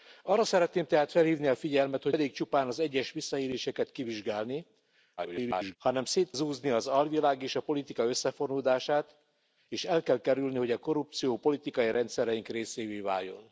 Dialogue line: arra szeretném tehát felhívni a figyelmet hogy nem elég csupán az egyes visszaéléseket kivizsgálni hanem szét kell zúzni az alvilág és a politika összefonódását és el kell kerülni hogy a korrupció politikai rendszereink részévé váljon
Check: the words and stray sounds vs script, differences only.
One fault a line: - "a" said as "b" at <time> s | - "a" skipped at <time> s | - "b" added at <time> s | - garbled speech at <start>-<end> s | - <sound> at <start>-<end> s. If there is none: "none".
- "nem" skipped at 2.1 s
- garbled speech at 5.2-5.8 s
- "kell" skipped at 6.3 s